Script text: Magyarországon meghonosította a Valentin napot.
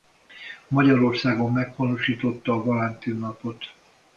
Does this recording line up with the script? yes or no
yes